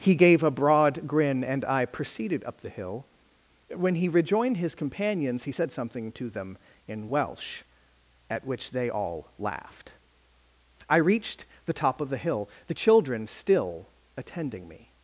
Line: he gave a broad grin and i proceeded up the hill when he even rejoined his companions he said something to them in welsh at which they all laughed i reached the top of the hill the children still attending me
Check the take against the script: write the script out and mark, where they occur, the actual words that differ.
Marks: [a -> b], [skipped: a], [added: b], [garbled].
he gave a broad grin and i proceeded up the hill when he [skipped: even] rejoined his companions he said something to them in welsh at which they all laughed i reached the top of the hill the children still attending me